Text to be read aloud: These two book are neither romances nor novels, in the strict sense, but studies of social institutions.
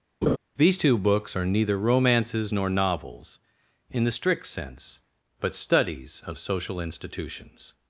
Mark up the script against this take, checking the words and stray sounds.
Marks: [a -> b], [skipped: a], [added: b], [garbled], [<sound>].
[laugh] These two [book -> books] are neither romances nor novels, in the strict sense, but studies of social institutions.